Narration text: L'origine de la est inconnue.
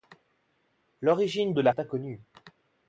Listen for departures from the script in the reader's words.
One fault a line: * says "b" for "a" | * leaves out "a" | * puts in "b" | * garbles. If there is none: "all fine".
all fine